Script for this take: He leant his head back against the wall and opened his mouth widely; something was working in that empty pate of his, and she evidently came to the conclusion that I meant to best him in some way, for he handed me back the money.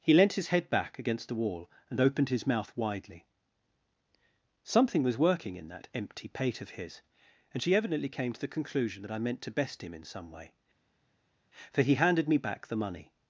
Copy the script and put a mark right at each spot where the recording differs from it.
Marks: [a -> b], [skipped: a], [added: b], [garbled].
He leant his head back against the wall and opened his mouth widely; something was working in that empty pate of his, and she evidently came to the conclusion that I meant to best him in some way, for he handed me back the money.